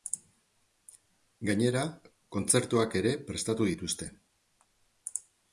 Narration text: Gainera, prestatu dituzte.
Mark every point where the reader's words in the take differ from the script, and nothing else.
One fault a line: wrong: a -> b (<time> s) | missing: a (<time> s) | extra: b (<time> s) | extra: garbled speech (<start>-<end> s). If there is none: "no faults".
extra: kontzertuak ere (2.4 s)